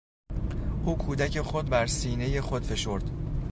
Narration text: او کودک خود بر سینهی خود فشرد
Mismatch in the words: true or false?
false